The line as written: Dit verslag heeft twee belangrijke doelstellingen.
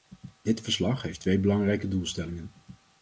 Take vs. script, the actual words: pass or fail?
pass